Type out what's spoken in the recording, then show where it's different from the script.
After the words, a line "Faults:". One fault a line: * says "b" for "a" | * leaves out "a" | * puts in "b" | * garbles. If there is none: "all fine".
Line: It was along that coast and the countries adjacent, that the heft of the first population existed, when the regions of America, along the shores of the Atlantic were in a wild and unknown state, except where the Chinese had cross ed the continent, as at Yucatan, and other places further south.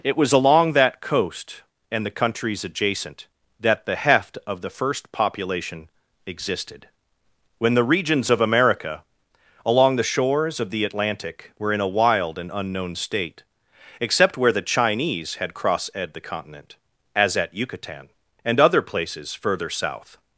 It was along that coast and the countries adjacent, that the heft of the first population existed, when the regions of America, along the shores of the Atlantic were in a wild and unknown state, except where the Chinese had cross ed the continent, as at Yucatan, and other places further south.
Faults:
all fine